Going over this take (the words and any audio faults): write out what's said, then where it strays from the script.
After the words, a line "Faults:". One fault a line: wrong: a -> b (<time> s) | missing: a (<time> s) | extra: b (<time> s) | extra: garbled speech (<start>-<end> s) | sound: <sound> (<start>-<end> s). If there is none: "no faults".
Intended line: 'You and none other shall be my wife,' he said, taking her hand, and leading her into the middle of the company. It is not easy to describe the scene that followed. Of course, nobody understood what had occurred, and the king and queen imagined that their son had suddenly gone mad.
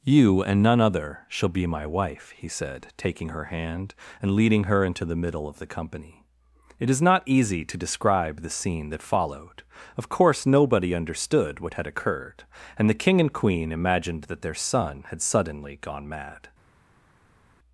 'You and none other shall be my wife,' he said, taking her hand, and leading her into the middle of the company. It is not easy to describe the scene that followed. Of course, nobody understood what had occurred, and the king and queen imagined that their son had suddenly gone mad.
Faults:
no faults